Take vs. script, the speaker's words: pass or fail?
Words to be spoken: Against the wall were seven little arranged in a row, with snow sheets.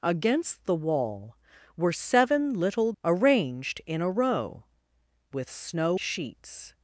pass